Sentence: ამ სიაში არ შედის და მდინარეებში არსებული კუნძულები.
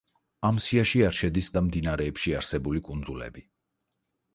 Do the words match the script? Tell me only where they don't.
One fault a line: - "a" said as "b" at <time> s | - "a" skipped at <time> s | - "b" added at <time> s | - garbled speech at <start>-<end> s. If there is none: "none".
none